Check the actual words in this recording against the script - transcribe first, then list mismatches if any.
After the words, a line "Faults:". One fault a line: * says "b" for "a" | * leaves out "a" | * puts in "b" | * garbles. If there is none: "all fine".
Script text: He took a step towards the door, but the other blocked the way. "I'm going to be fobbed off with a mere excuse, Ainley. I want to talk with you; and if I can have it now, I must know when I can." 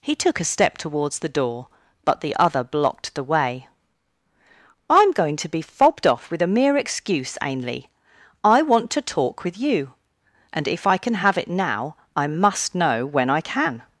He took a step towards the door, but the other blocked the way. "I'm going to be fobbed off with a mere excuse, Ainley. I want to talk with you; and if I can have it now, I must know when I can."
Faults:
all fine